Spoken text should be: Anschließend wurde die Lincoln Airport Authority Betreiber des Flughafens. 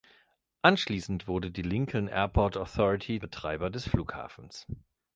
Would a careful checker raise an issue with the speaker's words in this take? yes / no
no